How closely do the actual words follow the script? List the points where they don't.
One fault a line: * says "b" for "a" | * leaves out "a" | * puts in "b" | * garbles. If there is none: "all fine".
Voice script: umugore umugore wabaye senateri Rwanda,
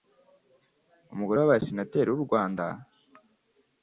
* leaves out "umugore"
* puts in "w'u"